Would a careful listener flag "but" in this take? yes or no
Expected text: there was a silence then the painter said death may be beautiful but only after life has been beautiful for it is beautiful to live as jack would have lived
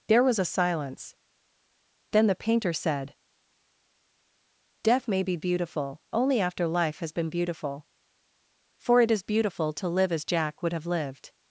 yes